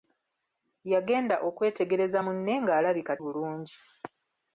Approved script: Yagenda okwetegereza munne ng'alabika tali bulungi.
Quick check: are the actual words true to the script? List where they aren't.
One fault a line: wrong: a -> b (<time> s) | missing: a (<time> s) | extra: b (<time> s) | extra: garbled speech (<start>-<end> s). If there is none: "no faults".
missing: tali (3.1 s)